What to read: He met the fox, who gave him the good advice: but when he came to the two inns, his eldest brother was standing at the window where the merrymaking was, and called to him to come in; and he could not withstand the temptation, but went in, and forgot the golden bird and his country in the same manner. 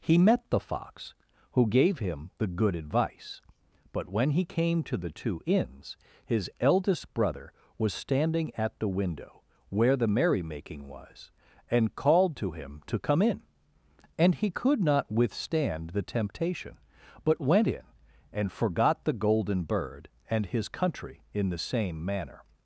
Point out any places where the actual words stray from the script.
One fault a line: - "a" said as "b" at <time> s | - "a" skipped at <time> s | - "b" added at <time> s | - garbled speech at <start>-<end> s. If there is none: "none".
none